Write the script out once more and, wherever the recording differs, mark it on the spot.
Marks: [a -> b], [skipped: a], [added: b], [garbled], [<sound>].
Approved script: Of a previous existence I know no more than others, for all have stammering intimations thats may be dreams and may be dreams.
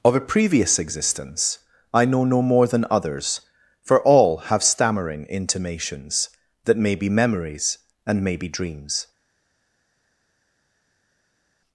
Of a previous existence I know no more than others, for all have stammering intimations [thats -> that] may be [dreams -> memories] and may be dreams.